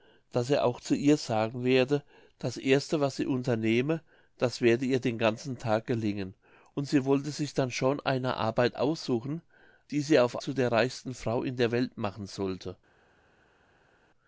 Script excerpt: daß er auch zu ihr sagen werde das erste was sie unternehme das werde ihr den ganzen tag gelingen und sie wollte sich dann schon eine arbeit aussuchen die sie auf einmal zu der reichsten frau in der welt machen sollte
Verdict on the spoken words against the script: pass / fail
fail